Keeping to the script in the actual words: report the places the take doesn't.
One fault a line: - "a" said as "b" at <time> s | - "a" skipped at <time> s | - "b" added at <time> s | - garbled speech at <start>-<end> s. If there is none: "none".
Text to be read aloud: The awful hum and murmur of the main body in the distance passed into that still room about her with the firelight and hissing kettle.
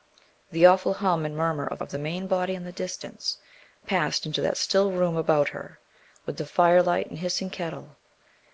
- "of" added at 1.8 s